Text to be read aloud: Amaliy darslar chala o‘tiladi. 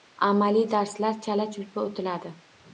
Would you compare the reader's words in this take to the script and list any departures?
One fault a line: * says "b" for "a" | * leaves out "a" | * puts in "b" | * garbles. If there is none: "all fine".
* puts in "chulpa"